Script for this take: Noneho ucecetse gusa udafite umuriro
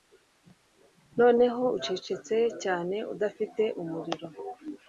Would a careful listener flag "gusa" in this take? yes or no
yes